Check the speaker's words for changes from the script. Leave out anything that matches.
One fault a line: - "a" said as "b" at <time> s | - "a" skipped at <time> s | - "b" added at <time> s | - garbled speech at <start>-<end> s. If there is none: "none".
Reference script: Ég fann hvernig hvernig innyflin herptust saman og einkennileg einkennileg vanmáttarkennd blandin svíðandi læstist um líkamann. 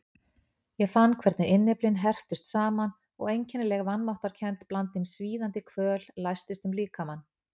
- "hvernig" skipped at 1.5 s
- "einkennileg" skipped at 3.9 s
- "kvöl" added at 5.7 s